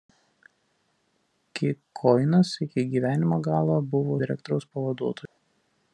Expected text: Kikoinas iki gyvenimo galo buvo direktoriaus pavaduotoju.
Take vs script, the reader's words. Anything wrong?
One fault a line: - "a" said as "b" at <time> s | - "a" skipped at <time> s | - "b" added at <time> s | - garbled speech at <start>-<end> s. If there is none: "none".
none